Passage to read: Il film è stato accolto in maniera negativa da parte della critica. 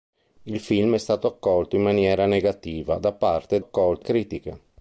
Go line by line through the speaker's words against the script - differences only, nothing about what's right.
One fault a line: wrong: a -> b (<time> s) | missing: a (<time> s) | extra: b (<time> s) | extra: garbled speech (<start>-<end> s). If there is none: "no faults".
wrong: della -> accolto (3.6 s)